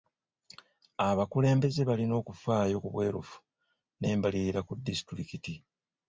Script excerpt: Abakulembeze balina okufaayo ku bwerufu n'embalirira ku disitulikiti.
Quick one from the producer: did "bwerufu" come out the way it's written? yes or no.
yes